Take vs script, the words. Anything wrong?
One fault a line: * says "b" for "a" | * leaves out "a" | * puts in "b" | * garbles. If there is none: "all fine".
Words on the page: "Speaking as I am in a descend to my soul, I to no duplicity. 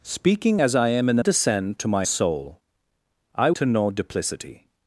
all fine